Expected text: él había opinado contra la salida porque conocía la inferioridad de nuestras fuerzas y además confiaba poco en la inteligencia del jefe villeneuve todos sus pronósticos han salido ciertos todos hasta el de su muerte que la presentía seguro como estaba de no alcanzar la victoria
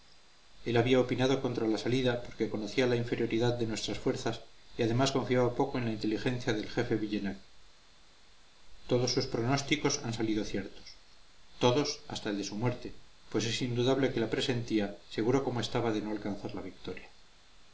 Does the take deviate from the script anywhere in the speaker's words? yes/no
yes